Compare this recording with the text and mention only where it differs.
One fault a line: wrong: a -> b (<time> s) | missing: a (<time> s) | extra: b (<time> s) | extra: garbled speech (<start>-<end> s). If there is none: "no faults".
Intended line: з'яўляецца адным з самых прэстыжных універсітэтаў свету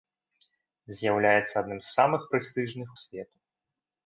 missing: універсітэтаў (2.9 s)